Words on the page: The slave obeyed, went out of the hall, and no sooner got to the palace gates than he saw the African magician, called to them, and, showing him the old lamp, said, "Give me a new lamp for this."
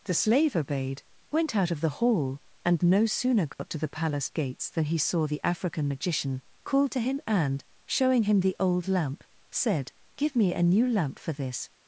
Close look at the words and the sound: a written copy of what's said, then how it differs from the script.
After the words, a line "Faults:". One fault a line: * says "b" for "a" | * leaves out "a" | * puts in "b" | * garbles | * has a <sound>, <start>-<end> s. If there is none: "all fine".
The slave obeyed, went out of the hall, and no sooner got to the palace gates than he saw the African magician, called to him, and, showing him the old lamp, said, "Give me a new lamp for this."
Faults:
* has a dropout, 3.5-3.6 s
* says "him" for "them"